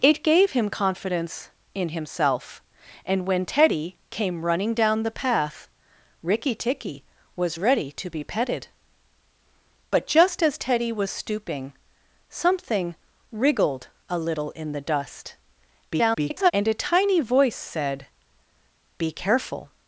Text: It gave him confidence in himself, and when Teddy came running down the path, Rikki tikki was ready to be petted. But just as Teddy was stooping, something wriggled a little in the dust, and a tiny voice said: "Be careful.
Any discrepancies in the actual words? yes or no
yes